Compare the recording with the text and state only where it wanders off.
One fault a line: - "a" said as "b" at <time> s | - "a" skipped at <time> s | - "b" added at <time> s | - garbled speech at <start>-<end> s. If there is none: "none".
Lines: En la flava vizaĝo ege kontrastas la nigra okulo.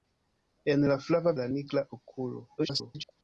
- "vizaĝo ege kontrastas" skipped at 1.4 s
- garbled speech at 2.6-3.1 s